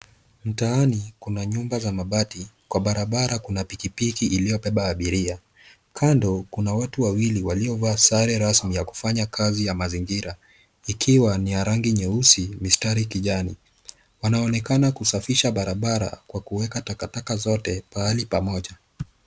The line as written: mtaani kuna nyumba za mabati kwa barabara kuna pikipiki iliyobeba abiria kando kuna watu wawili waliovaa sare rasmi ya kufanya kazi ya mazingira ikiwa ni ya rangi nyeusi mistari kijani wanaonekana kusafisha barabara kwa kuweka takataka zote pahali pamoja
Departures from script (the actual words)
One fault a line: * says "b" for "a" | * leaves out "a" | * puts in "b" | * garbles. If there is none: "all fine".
all fine